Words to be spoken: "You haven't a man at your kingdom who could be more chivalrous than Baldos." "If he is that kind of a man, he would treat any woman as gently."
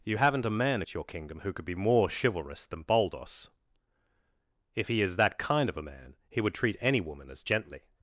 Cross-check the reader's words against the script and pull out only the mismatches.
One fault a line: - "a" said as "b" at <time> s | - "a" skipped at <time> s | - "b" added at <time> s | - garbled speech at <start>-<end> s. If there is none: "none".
none